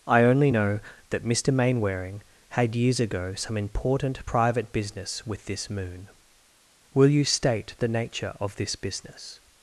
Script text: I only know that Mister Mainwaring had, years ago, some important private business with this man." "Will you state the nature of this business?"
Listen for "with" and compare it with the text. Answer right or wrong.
right